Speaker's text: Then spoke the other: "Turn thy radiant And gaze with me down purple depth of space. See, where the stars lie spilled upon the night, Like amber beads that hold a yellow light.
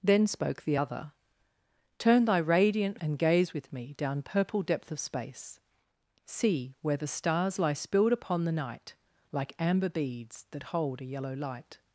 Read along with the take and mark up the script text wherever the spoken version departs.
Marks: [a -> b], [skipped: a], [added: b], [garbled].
Then spoke the other: "Turn thy radiant And gaze with me down purple depth of space. See, where the stars lie spilled upon the night, Like amber beads that hold a yellow light.